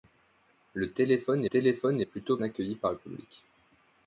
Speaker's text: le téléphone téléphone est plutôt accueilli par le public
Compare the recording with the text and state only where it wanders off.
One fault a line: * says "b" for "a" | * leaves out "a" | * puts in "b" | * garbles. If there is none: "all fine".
all fine